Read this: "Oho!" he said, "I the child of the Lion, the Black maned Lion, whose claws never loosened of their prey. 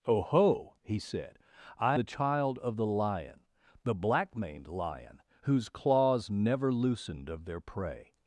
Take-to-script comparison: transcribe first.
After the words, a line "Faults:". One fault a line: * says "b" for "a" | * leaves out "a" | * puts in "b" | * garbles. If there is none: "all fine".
"Oho!" he said, "I the child of the Lion, the Black maned Lion, whose claws never loosened of their prey.
Faults:
all fine